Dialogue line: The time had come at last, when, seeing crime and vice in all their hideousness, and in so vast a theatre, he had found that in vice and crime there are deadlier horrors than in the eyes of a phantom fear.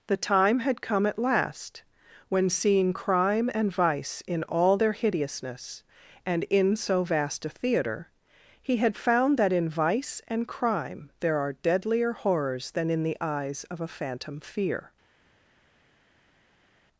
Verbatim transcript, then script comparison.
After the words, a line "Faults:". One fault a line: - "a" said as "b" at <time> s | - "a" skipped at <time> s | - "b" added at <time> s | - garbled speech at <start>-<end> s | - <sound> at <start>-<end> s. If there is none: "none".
The time had come at last, when, seeing crime and vice in all their hideousness, and in so vast a theatre, he had found that in vice and crime there are deadlier horrors than in the eyes of a phantom fear.
Faults:
none